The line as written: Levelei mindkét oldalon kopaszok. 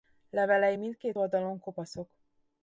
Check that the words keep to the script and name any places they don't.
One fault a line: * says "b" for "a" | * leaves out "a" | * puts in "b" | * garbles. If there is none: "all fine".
all fine